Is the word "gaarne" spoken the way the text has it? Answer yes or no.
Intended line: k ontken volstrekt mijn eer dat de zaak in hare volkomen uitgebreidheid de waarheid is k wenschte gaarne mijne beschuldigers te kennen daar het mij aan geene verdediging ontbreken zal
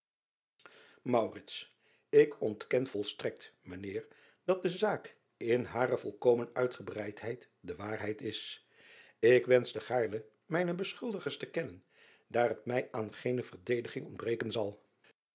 yes